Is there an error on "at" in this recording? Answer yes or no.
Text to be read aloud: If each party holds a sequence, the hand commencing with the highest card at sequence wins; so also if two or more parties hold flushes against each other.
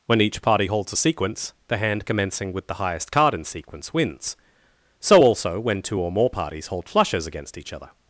yes